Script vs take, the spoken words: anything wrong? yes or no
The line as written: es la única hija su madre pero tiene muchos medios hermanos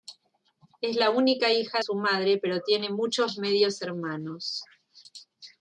no